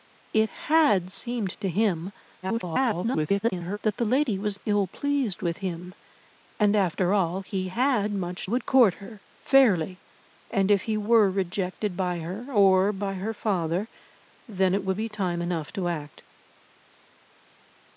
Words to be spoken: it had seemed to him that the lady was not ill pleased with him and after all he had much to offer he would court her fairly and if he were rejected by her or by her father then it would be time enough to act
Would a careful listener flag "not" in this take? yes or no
yes